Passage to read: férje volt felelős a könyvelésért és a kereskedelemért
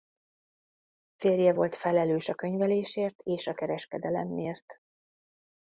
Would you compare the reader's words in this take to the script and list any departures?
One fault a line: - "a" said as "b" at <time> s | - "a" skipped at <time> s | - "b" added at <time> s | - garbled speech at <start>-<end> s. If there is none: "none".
none